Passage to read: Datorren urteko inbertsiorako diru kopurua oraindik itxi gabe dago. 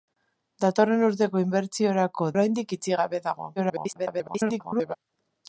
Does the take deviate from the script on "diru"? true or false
true